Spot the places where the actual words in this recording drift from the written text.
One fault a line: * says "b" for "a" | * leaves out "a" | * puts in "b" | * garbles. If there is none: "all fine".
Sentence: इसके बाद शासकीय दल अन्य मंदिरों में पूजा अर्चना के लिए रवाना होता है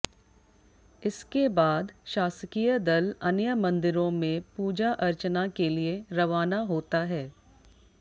all fine